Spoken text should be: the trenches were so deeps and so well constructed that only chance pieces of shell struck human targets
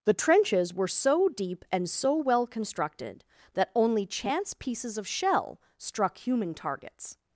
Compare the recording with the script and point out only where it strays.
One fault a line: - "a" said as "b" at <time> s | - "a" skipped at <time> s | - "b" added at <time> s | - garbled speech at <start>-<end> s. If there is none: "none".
- "deeps" said as "deep" at 1.3 s